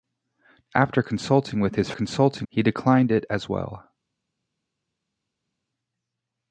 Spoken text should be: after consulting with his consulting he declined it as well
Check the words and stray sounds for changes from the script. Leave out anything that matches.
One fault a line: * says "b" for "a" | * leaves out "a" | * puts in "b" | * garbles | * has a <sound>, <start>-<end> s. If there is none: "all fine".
all fine